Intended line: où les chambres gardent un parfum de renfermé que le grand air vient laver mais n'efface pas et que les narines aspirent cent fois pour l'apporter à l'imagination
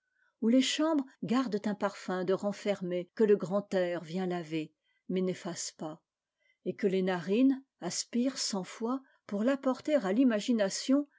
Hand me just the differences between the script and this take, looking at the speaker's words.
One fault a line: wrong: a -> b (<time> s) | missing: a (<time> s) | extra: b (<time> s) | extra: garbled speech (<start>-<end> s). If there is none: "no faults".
no faults